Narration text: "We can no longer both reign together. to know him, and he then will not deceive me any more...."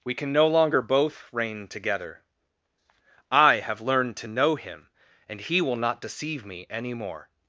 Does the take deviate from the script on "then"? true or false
true